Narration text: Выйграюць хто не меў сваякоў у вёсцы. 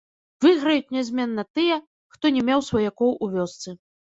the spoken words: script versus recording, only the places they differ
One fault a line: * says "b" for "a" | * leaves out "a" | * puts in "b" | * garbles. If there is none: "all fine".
* puts in "нязменна тыя"